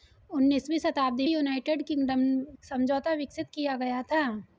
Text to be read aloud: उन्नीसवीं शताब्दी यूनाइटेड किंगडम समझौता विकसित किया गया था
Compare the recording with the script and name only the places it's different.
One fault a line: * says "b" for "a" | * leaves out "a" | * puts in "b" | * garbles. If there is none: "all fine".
all fine